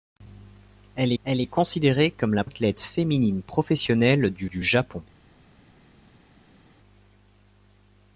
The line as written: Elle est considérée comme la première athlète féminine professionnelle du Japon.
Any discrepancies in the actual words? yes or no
yes